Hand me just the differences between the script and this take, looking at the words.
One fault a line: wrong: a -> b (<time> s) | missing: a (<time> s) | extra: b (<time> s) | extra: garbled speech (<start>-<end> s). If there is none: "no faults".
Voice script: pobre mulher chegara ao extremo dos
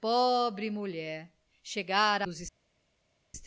missing: ao extremo (2.3 s)